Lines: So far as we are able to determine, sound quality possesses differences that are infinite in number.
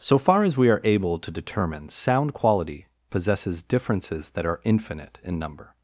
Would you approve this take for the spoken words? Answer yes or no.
yes